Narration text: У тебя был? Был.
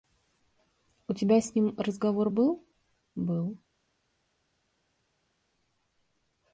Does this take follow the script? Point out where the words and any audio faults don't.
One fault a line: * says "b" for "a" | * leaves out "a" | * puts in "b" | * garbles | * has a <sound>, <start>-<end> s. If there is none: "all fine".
* puts in "с ним разговор"